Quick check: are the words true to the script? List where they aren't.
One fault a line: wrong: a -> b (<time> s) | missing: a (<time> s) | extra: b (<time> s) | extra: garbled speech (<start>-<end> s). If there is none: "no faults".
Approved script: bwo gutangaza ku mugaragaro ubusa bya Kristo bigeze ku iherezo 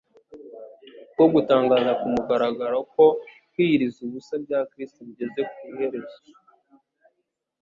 extra: ko kwiyiriza (2.9 s)